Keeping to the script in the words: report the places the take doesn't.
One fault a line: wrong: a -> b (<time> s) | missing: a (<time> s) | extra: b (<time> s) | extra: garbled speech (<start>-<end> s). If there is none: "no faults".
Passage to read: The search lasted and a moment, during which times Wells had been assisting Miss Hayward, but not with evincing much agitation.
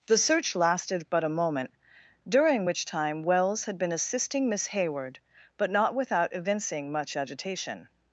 wrong: and -> but (1.1 s)
wrong: times -> time (2.8 s)
wrong: with -> without (5.9 s)